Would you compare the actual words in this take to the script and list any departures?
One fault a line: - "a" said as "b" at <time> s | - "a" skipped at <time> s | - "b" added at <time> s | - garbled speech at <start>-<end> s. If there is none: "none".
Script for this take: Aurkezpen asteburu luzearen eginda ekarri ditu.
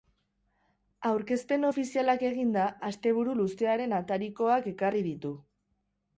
- "ofizialak eginda" added at 1.7 s
- "eginda" said as "atarikoak" at 4.0 s